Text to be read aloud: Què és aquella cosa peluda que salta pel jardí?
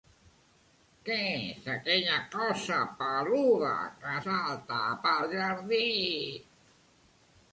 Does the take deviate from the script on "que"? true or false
false